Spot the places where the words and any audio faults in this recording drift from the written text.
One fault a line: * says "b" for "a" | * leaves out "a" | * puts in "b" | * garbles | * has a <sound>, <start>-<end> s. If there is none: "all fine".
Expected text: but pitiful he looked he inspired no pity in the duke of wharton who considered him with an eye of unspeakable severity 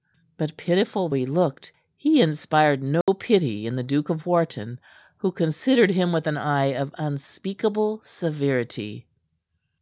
* has a dropout, 3.0-3.1 s